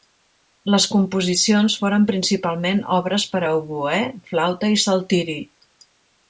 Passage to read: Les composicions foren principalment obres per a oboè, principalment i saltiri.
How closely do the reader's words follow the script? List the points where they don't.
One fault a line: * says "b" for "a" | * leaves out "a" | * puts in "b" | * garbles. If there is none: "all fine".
* says "flauta" for "principalment"